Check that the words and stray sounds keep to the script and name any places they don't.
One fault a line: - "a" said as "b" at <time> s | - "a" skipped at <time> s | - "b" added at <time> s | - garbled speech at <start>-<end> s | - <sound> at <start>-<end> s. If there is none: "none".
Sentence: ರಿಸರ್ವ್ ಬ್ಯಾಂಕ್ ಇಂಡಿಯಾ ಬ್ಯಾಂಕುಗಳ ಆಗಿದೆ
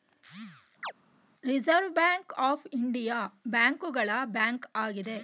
- chirp at 0.8-0.9 s
- "ಆಫ್" added at 2.4 s
- "ಬ್ಯಾಂಕ್" added at 4.3 s